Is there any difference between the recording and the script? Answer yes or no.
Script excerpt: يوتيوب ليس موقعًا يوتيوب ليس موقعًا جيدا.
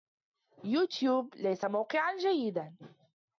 yes